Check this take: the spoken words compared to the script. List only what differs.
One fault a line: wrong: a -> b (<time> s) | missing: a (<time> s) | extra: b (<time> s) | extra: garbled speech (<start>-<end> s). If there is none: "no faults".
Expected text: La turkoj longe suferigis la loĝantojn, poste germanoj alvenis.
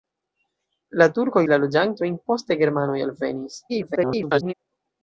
missing: longe suferigis (1.4 s)
extra: garbled speech (3.7-4.5 s)